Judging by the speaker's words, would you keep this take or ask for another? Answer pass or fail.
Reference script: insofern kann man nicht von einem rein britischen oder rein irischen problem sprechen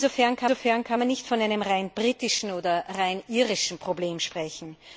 fail